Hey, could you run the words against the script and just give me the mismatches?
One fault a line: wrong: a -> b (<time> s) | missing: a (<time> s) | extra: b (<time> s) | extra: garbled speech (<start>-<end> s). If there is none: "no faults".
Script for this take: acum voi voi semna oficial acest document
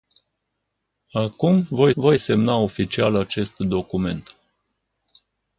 no faults